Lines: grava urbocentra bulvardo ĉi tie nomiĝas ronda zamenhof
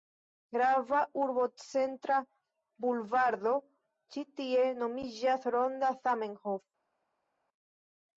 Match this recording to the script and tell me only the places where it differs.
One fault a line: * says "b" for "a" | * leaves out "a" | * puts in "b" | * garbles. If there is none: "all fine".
all fine